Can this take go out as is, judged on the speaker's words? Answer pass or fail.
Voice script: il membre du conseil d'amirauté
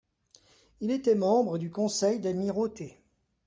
fail